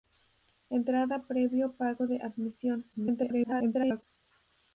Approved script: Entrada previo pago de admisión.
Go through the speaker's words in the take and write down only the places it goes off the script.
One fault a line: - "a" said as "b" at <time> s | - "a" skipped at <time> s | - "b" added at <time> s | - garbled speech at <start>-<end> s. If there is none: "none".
- garbled speech at 2.9-4.0 s